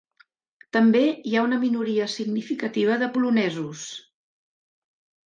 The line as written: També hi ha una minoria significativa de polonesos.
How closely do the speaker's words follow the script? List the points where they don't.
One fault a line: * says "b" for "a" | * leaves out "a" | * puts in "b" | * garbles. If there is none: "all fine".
all fine